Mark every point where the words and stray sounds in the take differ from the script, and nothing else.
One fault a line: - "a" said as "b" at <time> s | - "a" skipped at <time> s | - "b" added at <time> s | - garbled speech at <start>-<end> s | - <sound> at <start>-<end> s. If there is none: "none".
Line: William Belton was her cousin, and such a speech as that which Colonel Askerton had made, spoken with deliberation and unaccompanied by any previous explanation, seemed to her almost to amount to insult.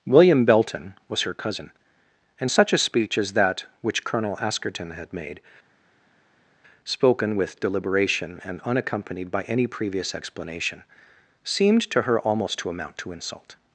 none